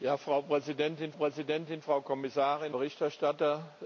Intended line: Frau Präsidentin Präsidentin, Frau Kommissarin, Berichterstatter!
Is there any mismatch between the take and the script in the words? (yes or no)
no